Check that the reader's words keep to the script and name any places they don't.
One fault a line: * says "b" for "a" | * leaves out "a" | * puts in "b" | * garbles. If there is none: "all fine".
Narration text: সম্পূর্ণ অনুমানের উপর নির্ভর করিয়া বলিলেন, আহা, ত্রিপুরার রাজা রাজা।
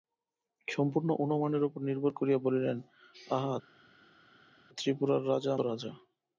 all fine